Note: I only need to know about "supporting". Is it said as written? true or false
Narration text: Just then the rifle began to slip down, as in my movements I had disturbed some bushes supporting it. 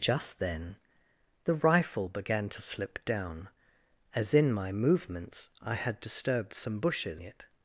false